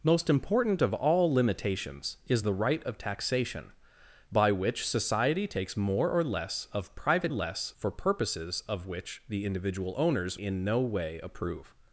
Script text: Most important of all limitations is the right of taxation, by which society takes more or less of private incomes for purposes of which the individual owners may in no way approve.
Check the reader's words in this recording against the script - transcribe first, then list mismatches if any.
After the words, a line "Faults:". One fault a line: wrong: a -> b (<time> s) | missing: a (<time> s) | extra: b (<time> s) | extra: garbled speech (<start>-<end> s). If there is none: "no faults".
Most important of all limitations is the right of taxation, by which society takes more or less of private less for purposes of which the individual owners in no way approve.
Faults:
wrong: incomes -> less (7.3 s)
missing: may (10.4 s)